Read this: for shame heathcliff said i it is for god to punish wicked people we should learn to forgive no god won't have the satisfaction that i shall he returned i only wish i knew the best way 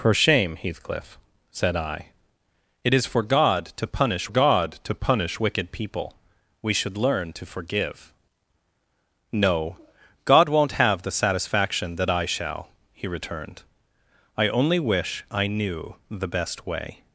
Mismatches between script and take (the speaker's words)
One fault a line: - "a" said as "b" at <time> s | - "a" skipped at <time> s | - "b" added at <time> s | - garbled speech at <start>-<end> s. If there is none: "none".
- "god to punish" added at 4.3 s